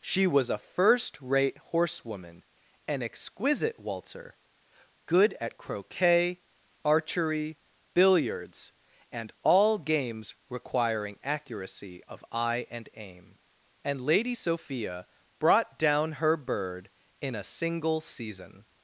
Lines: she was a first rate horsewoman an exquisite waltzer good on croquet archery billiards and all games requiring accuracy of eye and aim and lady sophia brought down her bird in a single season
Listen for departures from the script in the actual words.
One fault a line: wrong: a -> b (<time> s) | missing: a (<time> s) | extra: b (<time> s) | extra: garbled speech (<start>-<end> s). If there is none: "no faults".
wrong: on -> at (5.4 s)